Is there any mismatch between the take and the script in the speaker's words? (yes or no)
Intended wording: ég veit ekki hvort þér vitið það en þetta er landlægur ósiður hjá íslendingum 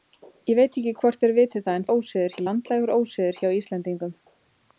yes